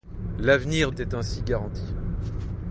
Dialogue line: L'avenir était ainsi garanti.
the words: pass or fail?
pass